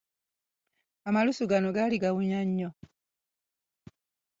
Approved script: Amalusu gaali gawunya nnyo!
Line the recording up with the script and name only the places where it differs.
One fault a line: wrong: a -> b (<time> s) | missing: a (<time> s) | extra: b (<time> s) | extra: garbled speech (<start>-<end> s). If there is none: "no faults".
extra: gano (1.5 s)